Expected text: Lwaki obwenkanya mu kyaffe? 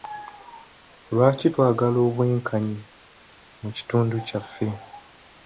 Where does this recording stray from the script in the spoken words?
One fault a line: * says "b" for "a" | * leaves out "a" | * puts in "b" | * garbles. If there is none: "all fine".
* puts in "twagala"
* puts in "kitundu"